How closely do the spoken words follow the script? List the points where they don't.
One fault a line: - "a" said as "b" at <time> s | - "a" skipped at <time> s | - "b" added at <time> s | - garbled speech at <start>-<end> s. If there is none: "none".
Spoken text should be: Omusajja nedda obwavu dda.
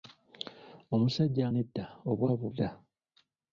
none